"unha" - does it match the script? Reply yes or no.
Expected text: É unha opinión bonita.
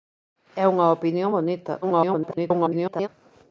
yes